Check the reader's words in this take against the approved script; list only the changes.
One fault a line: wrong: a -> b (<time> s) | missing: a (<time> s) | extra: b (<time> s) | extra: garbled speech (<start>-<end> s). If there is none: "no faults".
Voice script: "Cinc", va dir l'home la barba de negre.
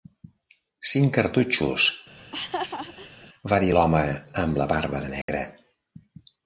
extra: cartutxos (1.2 s)
extra: amb (4.5 s)